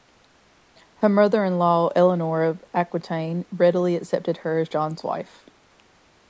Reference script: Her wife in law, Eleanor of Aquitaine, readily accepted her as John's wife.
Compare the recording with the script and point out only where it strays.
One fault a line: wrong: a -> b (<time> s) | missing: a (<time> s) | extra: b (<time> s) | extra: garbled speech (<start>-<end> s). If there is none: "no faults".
wrong: wife -> mother (1.1 s)